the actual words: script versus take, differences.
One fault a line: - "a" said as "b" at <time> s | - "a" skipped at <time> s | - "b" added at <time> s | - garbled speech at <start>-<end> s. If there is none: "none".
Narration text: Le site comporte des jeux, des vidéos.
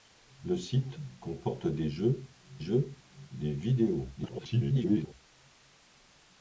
- "jeux" added at 2.6 s
- garbled speech at 4.2-5.1 s